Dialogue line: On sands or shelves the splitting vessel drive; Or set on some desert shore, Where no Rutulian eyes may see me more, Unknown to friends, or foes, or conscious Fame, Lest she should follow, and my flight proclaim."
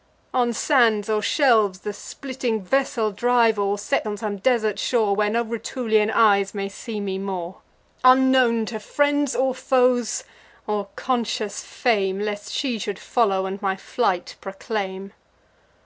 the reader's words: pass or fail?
pass